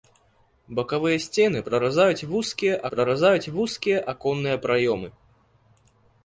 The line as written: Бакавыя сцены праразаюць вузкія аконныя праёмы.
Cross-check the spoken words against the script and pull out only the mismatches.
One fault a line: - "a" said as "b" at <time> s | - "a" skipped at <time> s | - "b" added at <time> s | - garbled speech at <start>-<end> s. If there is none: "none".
- "праразаюць вузкія" added at 2.9 s